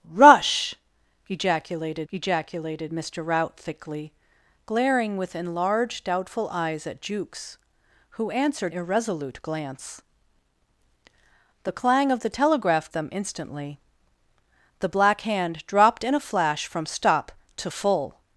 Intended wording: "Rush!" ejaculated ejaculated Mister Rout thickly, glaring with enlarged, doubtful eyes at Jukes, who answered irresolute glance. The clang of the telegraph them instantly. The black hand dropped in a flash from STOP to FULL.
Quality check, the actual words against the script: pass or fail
pass